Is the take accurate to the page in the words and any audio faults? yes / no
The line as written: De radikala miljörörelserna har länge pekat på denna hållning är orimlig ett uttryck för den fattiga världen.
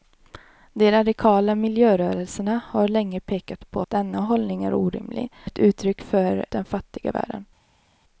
yes